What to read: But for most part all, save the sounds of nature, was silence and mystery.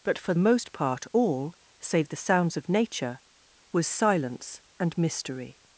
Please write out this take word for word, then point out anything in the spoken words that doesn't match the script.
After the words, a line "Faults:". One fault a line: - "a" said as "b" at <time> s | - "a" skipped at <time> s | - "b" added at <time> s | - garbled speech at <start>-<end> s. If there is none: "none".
But for most part all, save the sounds of nature, was silence and mystery.
Faults:
none